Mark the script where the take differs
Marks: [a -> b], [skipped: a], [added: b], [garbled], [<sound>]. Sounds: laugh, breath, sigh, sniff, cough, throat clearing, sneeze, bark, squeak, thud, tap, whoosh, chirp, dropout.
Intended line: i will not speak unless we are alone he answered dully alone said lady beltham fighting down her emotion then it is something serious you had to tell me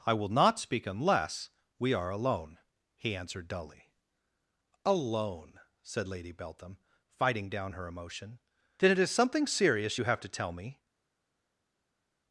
i will not speak unless we are alone he answered dully alone said lady beltham fighting down her emotion then it is something serious you [had -> have] to tell me